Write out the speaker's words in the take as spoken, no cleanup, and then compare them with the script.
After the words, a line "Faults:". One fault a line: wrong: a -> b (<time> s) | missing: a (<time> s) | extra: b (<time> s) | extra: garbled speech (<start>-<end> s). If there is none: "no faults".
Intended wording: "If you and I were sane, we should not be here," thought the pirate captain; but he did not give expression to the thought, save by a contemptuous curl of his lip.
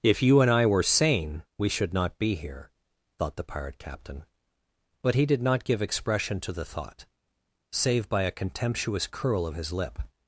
"If you and I were sane, we should not be here," thought the pirate captain; but he did not give expression to the thought, save by a contemptuous curl of his lip.
Faults:
no faults